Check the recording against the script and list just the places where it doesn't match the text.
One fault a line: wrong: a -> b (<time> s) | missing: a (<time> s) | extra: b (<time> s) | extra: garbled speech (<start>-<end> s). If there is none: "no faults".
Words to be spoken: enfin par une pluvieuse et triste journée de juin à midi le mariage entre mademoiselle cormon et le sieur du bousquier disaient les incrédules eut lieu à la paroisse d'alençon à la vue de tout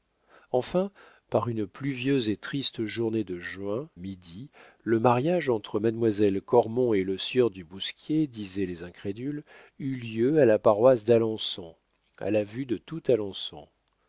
missing: à (3.9 s)